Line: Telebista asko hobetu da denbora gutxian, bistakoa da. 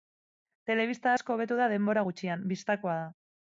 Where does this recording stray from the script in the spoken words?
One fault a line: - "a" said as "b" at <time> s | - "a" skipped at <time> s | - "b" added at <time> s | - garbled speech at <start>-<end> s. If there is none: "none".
none